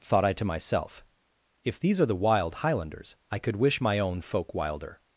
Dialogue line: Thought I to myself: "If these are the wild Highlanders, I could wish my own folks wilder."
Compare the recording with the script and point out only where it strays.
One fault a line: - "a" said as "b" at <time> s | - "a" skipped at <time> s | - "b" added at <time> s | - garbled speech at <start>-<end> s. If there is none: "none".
- "folks" said as "folk" at 4.2 s